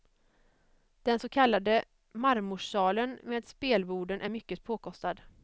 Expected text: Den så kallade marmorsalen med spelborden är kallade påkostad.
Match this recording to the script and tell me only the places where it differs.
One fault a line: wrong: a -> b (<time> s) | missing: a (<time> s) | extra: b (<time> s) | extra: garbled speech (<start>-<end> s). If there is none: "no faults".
wrong: kallade -> mycket (4.3 s)